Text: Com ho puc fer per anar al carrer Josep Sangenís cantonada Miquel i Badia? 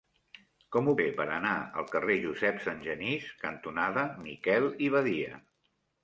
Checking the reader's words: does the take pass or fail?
fail